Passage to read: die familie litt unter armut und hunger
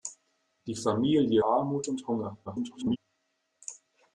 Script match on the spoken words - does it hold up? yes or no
no